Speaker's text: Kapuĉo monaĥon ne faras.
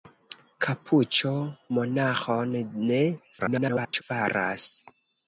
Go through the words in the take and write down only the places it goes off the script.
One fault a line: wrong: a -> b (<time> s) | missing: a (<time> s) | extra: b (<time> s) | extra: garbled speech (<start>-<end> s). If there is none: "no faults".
extra: garbled speech (3.4-4.0 s)